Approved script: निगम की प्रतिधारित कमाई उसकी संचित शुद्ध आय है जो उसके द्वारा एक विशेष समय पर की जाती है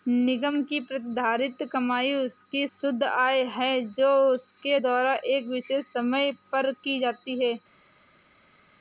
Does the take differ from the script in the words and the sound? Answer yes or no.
yes